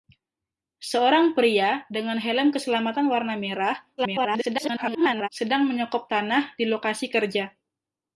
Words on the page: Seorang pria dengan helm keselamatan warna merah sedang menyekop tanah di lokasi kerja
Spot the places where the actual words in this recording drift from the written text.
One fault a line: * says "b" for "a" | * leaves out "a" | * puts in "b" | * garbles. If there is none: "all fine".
* garbles